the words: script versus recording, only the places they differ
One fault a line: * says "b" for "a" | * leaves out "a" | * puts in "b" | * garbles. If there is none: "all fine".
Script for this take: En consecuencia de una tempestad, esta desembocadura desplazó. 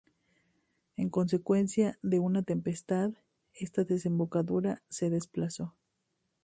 * puts in "se"